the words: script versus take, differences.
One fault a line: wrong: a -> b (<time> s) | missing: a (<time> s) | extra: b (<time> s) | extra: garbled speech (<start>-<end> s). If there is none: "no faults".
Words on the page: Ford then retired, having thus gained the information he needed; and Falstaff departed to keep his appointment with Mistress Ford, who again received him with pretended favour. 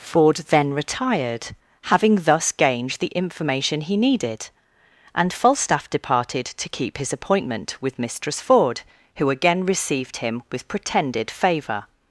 no faults